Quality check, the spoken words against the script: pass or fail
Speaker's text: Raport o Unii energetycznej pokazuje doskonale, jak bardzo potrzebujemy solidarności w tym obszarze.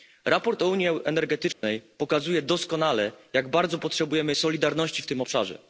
pass